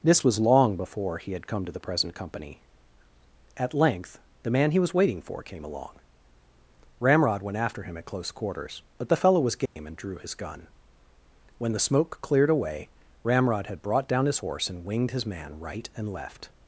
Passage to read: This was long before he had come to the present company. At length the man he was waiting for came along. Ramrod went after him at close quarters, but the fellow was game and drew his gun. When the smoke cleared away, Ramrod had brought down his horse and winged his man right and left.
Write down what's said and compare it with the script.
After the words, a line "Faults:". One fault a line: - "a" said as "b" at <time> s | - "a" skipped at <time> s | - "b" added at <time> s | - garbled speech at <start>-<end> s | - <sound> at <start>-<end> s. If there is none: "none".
This was long before he had come to the present company. At length the man he was waiting for came along. Ramrod went after him at close quarters, but the fellow was game and drew his gun. When the smoke cleared away, Ramrod had brought down his horse and winged his man right and left.
Faults:
- dropout at 9.7-9.8 s